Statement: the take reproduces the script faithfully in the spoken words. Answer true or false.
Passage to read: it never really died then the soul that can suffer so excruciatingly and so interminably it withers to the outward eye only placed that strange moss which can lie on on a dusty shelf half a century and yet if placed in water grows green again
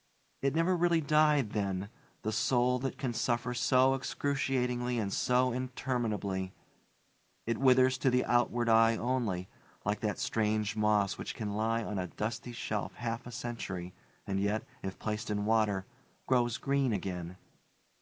false